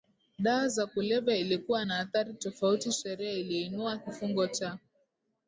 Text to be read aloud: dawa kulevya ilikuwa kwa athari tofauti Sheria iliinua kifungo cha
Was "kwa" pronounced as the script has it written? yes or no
no